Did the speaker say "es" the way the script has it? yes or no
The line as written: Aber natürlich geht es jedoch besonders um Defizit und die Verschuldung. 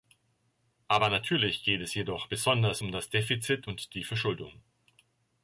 yes